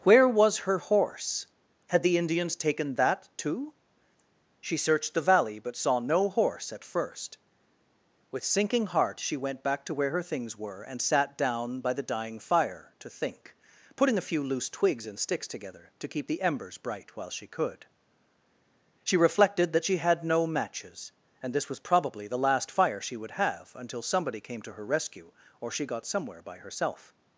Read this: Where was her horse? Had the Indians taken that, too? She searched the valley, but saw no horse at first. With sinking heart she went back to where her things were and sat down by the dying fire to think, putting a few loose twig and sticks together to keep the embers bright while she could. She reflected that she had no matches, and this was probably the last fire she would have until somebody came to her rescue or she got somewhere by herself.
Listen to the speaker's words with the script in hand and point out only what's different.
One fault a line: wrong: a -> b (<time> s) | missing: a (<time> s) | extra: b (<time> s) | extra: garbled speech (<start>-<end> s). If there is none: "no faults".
wrong: twig -> twigs (14.7 s)